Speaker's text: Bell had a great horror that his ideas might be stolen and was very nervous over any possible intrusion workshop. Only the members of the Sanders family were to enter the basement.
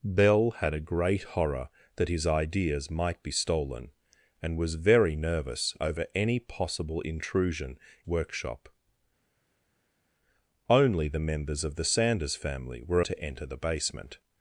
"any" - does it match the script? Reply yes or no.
yes